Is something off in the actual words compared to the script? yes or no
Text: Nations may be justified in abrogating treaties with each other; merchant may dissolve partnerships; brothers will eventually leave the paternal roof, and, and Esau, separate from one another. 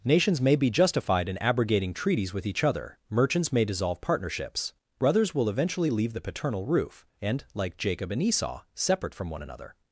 yes